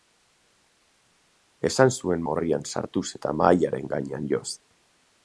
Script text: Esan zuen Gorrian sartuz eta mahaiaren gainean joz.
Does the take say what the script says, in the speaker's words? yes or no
yes